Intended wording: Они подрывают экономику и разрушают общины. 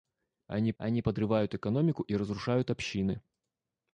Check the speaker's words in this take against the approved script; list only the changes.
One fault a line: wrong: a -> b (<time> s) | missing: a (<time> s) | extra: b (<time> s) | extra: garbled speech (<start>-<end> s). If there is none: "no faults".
extra: они (0.8 s)